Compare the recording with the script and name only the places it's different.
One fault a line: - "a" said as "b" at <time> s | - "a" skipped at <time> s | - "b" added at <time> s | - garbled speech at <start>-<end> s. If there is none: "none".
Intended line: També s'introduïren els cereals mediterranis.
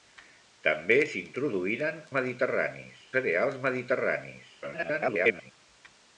- "els" said as "mediterranis" at 2.2 s
- garbled speech at 4.6-5.5 s